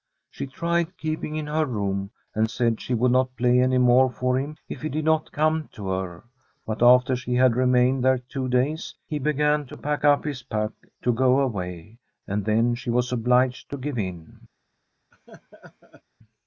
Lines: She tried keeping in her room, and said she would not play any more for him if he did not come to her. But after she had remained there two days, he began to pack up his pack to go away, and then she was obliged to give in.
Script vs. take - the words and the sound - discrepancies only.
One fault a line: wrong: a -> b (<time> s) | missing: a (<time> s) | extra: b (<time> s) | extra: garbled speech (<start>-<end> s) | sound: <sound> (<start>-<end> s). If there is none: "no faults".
sound: laugh (15.1-16.0 s)